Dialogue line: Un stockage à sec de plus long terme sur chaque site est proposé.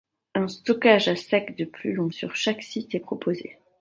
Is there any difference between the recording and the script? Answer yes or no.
yes